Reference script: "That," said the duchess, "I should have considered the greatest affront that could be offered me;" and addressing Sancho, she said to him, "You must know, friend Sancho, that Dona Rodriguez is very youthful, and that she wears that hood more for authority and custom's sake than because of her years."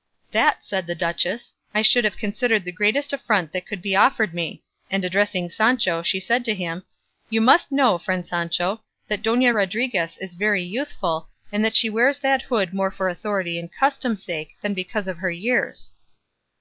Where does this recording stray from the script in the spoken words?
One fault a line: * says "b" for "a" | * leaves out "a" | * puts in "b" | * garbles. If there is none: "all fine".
all fine